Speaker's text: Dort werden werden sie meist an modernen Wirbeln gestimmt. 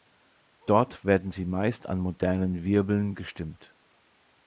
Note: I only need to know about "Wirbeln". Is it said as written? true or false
true